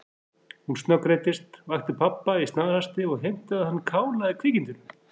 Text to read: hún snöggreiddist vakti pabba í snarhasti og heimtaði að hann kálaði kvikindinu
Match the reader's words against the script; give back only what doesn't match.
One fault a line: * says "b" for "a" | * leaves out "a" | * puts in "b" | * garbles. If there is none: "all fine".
all fine